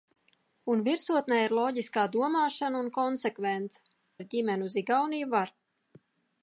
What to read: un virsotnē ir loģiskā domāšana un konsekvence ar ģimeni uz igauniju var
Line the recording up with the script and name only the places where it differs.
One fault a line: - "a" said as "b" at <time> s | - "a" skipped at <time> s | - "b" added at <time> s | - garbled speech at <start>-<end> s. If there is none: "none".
none